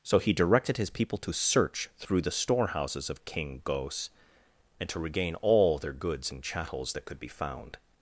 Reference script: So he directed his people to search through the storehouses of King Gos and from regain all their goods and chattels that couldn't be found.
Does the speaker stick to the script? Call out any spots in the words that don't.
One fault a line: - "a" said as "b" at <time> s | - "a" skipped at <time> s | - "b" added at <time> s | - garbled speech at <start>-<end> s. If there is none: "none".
- "from" said as "to" at 4.9 s
- "couldn't" said as "could" at 7.1 s